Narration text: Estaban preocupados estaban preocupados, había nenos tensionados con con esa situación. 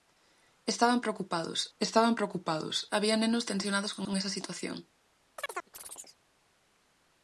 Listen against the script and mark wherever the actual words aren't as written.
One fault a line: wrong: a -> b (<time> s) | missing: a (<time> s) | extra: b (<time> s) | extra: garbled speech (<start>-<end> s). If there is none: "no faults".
no faults